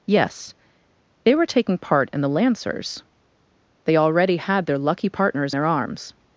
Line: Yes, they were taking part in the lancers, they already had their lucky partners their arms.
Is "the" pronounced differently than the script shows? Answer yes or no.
no